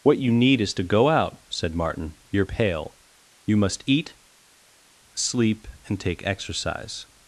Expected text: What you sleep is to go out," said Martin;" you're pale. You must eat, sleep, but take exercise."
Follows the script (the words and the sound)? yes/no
no